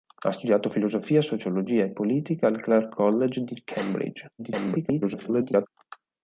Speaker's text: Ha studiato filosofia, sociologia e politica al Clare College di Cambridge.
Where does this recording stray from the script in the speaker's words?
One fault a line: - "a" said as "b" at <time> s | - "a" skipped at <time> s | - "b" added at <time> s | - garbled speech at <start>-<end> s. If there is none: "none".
- garbled speech at 4.4-5.7 s